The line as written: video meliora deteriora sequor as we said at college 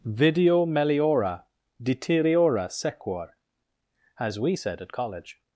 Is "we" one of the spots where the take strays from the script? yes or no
no